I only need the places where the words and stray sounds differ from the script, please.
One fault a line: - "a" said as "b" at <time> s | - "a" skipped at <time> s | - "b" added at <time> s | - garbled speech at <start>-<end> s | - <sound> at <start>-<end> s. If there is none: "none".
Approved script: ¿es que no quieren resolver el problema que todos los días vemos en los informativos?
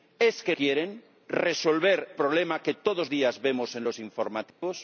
- "no" skipped at 0.6 s
- "el" skipped at 2.1 s
- "los" skipped at 3.1 s
- dropout at 4.5-4.6 s